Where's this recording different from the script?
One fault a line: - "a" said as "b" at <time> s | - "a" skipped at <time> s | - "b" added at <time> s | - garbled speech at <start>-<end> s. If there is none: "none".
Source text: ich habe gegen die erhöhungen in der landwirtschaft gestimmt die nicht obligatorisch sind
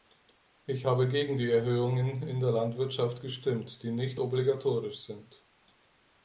none